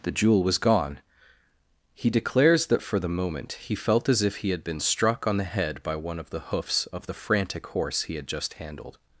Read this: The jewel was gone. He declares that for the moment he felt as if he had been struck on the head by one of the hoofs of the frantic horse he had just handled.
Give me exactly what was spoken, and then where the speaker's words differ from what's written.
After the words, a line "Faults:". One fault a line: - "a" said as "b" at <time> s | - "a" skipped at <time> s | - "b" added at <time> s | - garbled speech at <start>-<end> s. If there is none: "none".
The jewel was gone. He declares that for the moment he felt as if he had been struck on the head by one of the hoofs of the frantic horse he had just handled.
Faults:
none